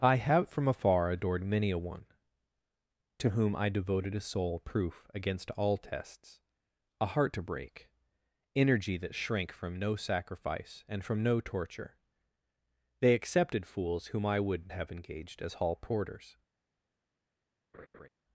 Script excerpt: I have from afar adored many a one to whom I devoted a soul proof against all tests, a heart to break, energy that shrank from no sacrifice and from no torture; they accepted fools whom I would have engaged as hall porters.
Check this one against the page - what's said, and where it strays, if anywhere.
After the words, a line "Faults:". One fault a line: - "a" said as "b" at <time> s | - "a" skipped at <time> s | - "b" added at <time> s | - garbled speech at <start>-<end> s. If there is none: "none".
I have from afar adored many a one to whom I devoted a soul proof against all tests, a heart to break, energy that shrank from no sacrifice and from no torture; they accepted fools whom I would have engaged as hall porters.
Faults:
none